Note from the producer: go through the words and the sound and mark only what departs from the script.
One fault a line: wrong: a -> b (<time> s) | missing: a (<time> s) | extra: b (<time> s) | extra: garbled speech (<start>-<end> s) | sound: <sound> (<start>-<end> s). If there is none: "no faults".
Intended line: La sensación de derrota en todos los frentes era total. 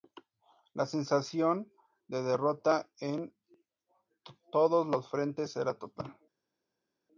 no faults